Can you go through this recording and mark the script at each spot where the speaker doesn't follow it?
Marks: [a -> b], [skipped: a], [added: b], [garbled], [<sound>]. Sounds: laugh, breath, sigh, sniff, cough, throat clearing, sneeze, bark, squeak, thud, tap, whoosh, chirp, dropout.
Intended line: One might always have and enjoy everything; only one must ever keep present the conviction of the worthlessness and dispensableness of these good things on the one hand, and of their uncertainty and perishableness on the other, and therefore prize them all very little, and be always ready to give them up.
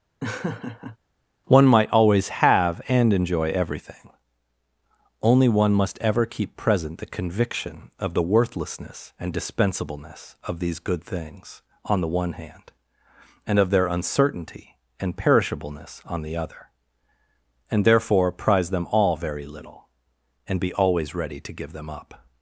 [laugh] One might always have and enjoy everything; only one must ever keep present the conviction of the worthlessness and dispensableness of these good things on the one hand, and of their uncertainty and perishableness on the other, and therefore prize them all very little, and be always ready to give them up.